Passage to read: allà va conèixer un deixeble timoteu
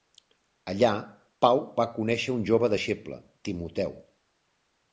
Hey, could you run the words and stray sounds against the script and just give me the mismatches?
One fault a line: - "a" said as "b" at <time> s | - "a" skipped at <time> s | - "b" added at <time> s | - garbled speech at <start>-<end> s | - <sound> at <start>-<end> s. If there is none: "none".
- "pau" added at 1.4 s
- "jove" added at 2.5 s